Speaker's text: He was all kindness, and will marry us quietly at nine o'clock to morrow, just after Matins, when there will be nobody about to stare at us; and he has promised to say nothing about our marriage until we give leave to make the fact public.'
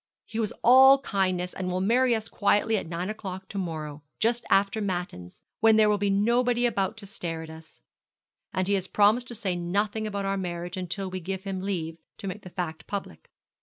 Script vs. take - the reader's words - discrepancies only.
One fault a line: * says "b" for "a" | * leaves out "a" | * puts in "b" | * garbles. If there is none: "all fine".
* puts in "him"